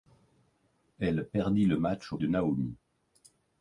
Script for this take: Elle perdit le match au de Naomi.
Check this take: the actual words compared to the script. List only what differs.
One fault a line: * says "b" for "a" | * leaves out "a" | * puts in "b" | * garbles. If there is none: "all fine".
all fine